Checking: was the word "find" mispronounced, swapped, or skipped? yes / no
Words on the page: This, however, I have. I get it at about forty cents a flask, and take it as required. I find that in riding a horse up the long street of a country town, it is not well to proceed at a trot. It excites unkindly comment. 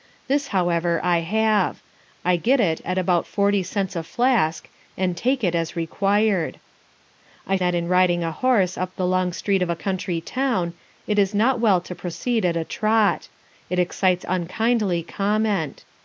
yes